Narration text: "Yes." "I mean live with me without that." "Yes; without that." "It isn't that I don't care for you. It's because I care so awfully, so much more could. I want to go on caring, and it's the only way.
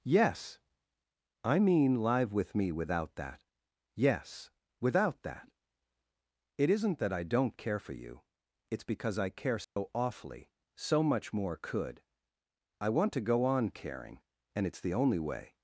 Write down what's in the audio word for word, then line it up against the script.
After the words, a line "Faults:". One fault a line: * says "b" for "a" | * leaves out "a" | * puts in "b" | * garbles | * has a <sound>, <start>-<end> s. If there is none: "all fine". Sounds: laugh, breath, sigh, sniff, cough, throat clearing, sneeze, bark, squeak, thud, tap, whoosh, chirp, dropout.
"Yes." "I mean live with me without that." "Yes; without that." "It isn't that I don't care for you. It's because I care so awfully, so much more could. I want to go on caring, and it's the only way.
Faults:
* has a dropout, 9.6-9.8 s